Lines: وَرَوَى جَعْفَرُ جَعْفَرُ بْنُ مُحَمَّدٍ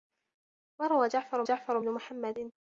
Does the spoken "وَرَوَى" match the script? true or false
true